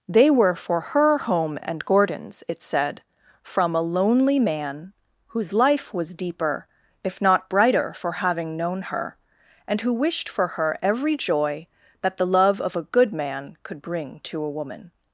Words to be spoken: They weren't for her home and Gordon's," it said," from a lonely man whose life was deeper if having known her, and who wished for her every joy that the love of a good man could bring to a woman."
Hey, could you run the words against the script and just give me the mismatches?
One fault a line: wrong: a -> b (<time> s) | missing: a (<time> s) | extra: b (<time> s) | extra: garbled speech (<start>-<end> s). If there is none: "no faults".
wrong: weren't -> were (0.3 s)
extra: not brighter for (7.2 s)